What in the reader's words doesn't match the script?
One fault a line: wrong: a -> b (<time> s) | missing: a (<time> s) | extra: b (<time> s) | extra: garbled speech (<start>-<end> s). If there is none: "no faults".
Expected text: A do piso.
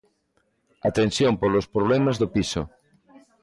extra: tensión polos problemas (1.0 s)